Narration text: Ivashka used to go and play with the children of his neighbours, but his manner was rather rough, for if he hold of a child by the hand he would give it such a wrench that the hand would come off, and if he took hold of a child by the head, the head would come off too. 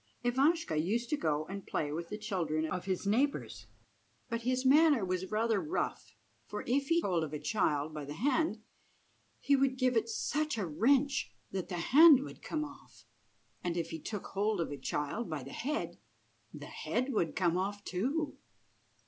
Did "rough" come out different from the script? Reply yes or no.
no